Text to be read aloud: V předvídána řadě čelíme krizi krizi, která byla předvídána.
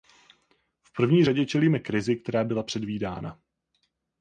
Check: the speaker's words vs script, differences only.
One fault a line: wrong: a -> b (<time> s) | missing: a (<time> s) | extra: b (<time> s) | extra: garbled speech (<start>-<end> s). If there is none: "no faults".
wrong: předvídána -> první (0.9 s)
missing: krizi (2.2 s)